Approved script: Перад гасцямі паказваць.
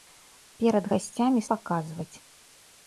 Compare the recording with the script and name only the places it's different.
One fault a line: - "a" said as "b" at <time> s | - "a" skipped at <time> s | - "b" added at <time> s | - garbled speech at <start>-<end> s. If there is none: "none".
none